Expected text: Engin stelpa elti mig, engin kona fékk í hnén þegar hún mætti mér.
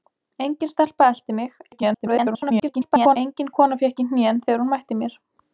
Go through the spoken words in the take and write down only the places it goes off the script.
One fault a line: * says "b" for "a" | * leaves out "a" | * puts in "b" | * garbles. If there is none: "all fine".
* garbles